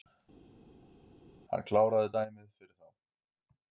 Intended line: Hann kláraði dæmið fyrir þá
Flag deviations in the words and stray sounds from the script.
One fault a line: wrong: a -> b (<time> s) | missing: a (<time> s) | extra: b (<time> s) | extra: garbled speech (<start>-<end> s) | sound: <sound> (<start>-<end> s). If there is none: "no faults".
no faults